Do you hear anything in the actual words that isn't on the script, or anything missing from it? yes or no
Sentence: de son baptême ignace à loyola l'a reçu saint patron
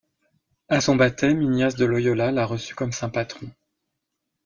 yes